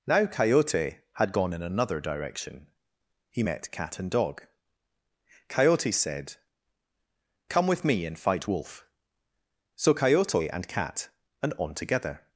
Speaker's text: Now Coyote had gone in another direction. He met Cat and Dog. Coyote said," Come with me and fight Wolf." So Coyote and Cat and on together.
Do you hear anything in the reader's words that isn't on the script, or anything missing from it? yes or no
no